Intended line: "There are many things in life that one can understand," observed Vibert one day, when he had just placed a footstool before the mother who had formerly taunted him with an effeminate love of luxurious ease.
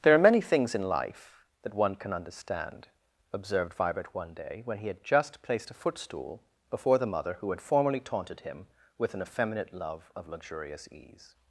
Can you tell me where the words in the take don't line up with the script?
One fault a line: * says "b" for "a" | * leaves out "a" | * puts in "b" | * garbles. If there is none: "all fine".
all fine